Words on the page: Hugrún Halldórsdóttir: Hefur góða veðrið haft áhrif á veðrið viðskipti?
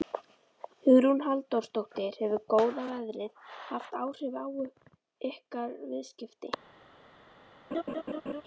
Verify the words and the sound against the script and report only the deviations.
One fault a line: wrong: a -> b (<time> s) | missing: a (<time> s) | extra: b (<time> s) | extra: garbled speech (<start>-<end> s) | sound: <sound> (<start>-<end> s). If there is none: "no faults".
wrong: veðrið -> ykkar (5.3 s)
sound: laugh (7.7-8.4 s)